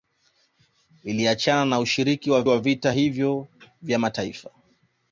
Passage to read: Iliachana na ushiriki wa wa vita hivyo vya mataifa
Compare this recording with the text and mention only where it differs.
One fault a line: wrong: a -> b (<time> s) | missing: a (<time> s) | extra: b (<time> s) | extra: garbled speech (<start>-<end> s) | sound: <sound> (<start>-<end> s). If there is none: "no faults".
no faults